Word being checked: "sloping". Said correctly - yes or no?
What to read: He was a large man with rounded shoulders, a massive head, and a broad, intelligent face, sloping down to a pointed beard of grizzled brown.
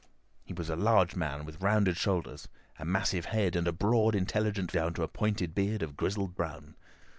no